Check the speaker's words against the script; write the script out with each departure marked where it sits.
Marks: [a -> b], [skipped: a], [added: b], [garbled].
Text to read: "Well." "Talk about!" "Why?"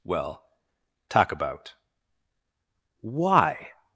"Well." "Talk about!" "Why?"